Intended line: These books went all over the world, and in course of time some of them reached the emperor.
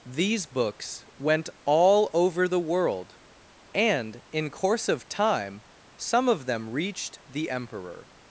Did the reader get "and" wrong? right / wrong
right